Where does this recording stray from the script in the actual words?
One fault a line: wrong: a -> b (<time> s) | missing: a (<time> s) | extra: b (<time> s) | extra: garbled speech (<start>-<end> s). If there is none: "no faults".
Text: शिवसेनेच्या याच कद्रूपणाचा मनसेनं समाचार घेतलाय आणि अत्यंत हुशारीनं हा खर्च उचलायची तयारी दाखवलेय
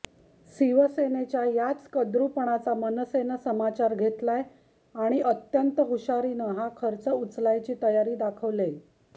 no faults